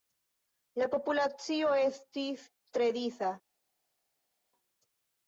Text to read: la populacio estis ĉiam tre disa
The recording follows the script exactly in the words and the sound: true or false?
false